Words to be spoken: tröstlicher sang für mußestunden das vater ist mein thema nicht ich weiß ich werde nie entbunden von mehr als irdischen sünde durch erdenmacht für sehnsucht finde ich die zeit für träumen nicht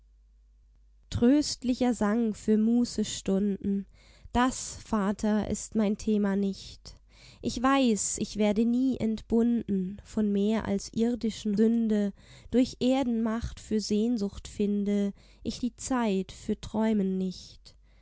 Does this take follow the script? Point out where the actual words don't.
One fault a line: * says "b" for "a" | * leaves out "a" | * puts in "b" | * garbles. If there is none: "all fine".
all fine